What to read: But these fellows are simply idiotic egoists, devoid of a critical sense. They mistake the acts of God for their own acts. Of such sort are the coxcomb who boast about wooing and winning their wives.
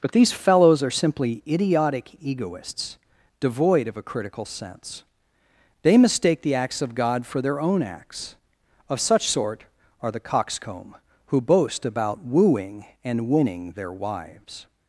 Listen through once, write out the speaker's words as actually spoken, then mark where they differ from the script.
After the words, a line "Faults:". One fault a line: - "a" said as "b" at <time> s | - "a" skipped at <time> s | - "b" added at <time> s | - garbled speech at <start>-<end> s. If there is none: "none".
But these fellows are simply idiotic egoists, devoid of a critical sense. They mistake the acts of God for their own acts. Of such sort are the coxcomb who boast about wooing and winning their wives.
Faults:
none